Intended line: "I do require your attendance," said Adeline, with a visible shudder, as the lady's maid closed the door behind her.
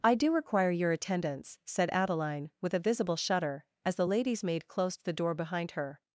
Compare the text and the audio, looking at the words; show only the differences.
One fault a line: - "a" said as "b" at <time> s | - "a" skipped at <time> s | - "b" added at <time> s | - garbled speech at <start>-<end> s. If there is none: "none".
none